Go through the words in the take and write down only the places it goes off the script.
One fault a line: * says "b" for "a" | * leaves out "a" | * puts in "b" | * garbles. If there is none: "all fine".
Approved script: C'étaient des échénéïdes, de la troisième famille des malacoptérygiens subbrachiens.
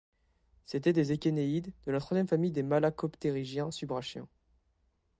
all fine